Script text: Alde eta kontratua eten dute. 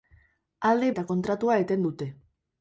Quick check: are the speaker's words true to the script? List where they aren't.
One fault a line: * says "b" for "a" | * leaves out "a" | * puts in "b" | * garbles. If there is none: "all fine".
all fine